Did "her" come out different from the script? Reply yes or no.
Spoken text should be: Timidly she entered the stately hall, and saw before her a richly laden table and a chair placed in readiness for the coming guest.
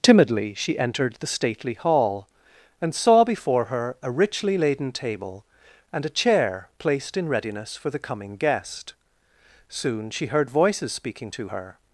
no